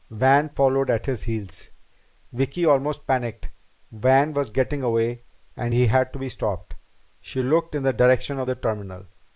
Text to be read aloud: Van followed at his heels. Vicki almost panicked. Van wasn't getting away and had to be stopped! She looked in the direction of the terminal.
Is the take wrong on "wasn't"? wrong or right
wrong